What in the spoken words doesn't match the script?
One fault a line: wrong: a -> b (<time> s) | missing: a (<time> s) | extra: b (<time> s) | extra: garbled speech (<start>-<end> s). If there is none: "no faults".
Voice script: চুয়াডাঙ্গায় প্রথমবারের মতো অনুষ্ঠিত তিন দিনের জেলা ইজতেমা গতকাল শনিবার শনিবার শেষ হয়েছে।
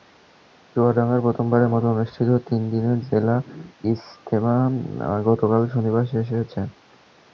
missing: শনিবার (6.0 s)